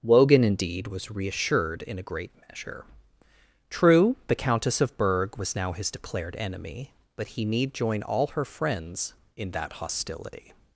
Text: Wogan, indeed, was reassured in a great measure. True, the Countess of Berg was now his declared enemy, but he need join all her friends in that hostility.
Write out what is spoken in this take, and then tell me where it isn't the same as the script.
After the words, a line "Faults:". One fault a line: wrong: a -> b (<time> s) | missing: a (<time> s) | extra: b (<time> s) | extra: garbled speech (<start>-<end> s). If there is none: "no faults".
Wogan, indeed, was reassured in a great measure. True, the Countess of Berg was now his declared enemy, but he need join all her friends in that hostility.
Faults:
no faults